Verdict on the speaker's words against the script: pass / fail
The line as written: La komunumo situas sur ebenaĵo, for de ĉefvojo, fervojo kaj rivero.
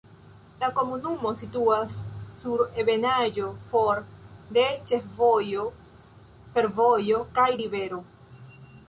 pass